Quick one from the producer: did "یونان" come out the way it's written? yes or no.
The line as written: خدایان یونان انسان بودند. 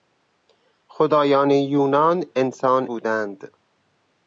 yes